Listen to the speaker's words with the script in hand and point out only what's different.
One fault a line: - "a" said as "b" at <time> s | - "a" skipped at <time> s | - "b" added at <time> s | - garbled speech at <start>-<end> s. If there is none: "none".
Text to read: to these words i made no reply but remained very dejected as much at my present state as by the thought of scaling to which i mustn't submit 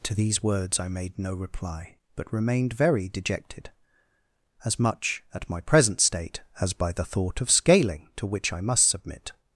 - "mustn't" said as "must" at 8.6 s